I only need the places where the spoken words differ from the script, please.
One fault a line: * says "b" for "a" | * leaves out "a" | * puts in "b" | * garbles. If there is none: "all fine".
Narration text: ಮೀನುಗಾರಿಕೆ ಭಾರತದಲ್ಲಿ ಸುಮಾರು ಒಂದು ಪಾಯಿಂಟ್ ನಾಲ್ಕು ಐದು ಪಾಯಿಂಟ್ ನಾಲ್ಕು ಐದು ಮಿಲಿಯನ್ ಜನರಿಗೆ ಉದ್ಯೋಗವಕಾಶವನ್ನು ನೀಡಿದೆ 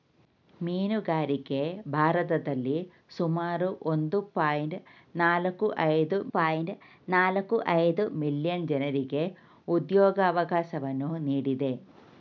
all fine